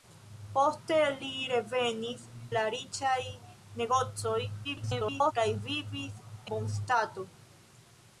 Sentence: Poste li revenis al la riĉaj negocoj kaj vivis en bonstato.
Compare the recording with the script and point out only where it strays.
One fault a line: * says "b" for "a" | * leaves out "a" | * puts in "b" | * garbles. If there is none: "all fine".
* leaves out "al"
* garbles
* leaves out "en"